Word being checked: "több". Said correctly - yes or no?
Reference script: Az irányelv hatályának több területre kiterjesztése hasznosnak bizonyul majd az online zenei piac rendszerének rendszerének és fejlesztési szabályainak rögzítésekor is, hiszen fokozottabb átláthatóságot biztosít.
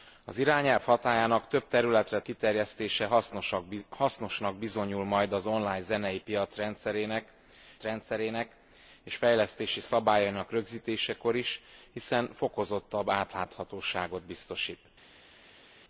yes